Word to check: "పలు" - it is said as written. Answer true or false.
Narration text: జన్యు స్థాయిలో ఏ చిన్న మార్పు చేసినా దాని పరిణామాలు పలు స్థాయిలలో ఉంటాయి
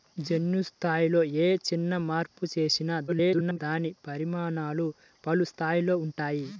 true